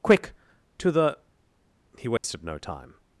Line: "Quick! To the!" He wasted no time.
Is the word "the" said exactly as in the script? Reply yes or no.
yes